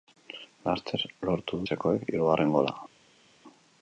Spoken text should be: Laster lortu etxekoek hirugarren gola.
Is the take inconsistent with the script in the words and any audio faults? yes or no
no